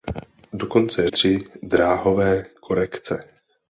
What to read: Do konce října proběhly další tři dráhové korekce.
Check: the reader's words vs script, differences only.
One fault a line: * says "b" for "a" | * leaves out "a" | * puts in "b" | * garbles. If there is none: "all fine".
* leaves out "října proběhly další"